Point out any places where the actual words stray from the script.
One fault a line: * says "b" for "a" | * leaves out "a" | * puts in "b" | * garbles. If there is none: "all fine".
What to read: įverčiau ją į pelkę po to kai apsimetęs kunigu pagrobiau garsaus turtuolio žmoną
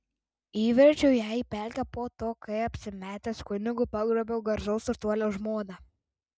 all fine